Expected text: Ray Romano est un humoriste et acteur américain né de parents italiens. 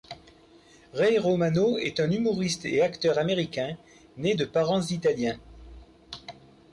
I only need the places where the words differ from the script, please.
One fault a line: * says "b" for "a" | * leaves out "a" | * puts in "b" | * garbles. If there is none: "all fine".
all fine